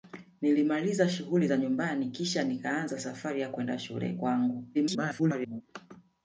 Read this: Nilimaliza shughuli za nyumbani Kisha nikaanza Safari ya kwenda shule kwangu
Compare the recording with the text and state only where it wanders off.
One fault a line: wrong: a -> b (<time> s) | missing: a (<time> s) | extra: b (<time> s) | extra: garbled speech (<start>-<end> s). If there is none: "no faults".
extra: garbled speech (4.7-5.6 s)